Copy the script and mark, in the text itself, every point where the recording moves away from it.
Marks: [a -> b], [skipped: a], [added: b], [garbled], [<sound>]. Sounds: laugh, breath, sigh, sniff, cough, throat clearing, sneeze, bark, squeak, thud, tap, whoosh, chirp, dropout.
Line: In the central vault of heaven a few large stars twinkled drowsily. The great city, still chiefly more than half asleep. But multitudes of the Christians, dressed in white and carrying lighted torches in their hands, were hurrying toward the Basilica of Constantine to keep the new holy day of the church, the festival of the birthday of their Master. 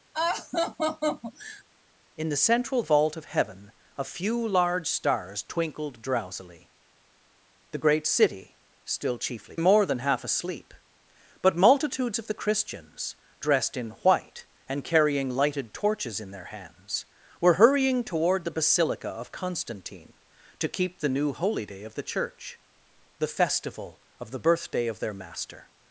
[laugh] In the central vault of heaven a few large stars twinkled drowsily. The great city, still chiefly more than half asleep. But multitudes of the Christians, dressed in white and carrying lighted torches in their hands, were hurrying toward the Basilica of Constantine to keep the new holy day of the church, the festival of the birthday of their Master.